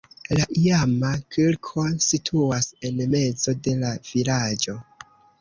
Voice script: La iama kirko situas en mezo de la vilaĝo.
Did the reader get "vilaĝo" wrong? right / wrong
right